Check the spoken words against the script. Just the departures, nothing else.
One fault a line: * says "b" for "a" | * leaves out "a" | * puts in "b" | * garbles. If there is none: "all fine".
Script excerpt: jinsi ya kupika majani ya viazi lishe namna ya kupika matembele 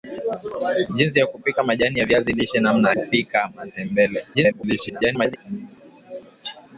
* leaves out "ya"
* garbles